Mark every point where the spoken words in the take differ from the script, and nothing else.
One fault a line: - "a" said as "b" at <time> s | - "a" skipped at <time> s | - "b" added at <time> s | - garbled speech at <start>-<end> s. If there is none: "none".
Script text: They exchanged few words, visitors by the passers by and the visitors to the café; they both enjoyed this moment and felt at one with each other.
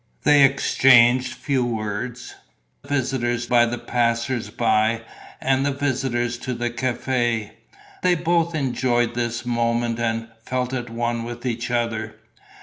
none